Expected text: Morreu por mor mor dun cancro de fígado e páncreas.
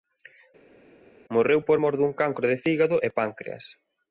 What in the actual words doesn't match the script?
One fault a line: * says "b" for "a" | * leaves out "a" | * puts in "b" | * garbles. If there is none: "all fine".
* leaves out "mor"